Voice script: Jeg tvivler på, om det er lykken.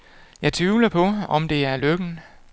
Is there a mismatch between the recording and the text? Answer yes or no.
no